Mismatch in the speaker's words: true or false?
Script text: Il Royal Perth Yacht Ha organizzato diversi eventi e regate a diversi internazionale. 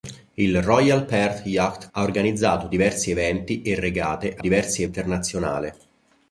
false